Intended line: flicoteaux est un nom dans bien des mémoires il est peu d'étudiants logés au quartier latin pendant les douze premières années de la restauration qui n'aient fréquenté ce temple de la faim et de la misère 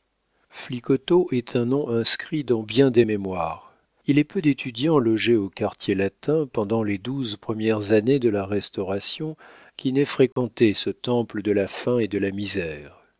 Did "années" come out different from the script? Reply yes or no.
no